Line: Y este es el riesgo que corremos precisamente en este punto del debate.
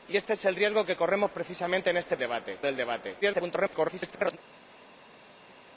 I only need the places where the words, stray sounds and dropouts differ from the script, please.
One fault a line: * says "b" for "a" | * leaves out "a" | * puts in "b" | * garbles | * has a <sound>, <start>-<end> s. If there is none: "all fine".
* says "debate" for "punto"
* garbles